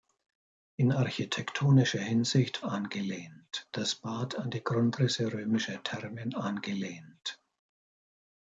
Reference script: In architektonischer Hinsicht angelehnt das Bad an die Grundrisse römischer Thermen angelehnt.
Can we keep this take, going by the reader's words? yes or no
yes